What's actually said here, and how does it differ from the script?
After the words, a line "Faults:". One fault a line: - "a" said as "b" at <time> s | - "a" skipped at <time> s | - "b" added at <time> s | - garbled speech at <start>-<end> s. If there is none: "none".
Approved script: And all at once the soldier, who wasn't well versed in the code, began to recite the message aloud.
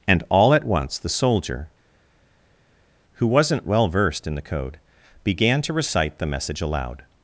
And all at once the soldier, who wasn't well versed in the code, began to recite the message aloud.
Faults:
none